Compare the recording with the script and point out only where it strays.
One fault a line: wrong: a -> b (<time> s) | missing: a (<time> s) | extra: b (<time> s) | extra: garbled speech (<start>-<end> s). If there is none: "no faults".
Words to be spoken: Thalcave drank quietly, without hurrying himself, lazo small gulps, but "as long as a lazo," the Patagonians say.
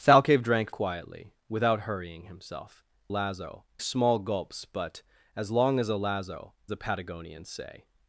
no faults